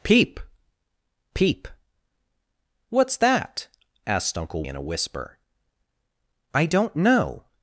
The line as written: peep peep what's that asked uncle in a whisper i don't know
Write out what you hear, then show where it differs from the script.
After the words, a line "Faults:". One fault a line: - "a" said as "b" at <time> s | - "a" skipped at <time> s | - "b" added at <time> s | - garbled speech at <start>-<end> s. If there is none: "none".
peep peep what's that asked uncle in a whisper i don't know
Faults:
none